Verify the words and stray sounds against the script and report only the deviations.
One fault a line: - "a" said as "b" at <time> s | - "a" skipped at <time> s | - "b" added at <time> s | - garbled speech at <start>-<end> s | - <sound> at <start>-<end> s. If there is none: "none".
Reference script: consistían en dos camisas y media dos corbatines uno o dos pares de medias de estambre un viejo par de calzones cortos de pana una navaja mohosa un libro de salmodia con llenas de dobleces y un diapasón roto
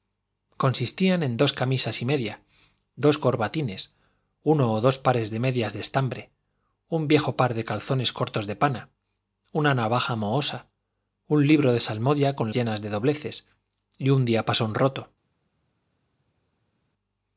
none